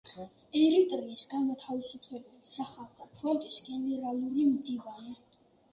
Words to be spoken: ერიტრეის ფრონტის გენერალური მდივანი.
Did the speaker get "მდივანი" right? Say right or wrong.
right